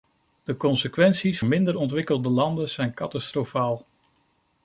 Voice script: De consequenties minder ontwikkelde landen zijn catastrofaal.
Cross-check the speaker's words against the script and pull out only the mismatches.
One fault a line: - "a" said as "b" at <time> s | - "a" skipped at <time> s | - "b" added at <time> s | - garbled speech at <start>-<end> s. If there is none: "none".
none